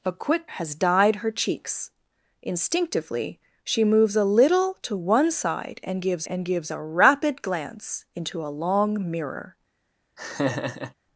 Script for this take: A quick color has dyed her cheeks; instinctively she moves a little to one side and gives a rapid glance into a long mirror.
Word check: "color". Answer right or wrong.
wrong